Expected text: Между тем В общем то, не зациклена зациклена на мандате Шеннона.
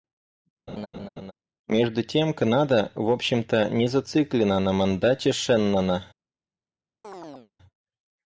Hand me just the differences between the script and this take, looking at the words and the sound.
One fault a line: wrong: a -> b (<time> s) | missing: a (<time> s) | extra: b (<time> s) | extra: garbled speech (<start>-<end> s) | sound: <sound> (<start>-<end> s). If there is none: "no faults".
sound: laugh (0.7-1.3 s)
extra: Канада (2.3 s)
missing: зациклена (4.6 s)
sound: chirp (7.0-7.5 s)